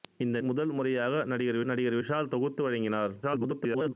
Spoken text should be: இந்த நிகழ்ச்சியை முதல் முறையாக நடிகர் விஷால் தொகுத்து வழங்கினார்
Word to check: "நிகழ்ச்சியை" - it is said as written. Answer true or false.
false